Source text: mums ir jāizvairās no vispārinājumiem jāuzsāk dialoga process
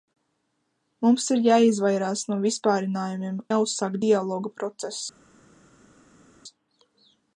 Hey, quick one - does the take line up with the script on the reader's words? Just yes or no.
yes